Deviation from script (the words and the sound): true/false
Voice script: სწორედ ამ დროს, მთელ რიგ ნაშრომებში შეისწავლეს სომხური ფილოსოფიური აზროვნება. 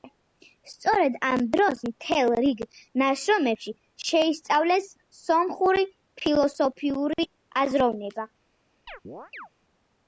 true